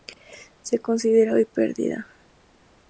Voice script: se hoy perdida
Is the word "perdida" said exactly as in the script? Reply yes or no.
yes